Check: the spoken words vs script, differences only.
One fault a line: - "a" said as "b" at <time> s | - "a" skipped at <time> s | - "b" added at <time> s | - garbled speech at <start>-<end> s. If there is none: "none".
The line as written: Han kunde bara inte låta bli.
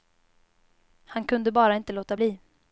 none